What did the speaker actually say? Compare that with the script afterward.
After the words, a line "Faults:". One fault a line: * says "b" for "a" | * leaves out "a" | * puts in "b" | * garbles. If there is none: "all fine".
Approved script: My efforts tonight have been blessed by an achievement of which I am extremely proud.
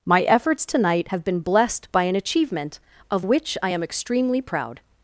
My efforts tonight have been blessed by an achievement of which I am extremely proud.
Faults:
all fine